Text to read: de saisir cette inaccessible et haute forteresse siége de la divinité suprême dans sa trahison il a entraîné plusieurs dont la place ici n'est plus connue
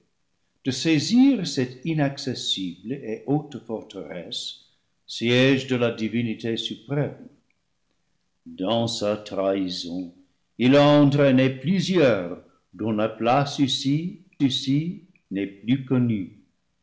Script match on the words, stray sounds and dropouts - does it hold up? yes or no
no